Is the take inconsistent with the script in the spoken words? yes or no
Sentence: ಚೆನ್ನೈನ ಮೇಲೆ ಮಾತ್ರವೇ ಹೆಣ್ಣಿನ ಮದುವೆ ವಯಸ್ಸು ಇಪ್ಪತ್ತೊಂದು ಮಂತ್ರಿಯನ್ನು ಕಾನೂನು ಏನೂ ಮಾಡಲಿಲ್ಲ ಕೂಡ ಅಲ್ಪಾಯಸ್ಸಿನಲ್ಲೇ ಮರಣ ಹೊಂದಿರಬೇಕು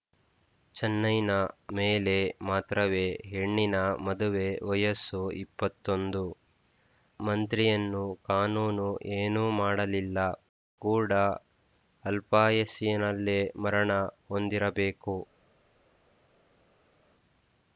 no